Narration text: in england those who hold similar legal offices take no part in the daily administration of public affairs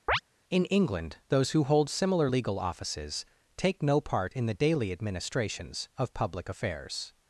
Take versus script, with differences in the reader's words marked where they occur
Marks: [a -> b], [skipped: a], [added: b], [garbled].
in england those who hold similar legal offices take no part in the daily [administration -> administrations] of public affairs